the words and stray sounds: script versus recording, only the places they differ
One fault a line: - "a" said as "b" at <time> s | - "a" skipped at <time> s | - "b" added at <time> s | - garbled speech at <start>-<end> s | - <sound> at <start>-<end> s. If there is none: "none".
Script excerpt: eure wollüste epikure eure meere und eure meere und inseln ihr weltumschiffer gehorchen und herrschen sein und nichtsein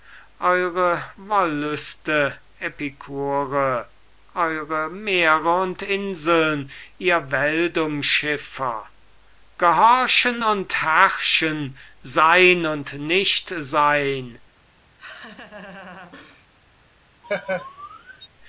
- "eure meere und" skipped at 5.8 s
- laugh at 15.0-16.5 s
- laugh at 17.2-18.3 s